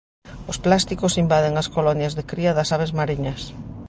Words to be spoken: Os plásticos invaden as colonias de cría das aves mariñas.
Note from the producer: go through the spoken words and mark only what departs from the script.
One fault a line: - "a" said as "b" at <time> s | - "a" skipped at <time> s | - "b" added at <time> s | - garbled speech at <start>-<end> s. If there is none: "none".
none